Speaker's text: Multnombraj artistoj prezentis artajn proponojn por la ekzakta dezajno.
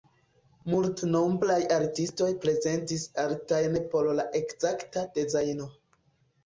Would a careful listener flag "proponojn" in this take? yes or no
yes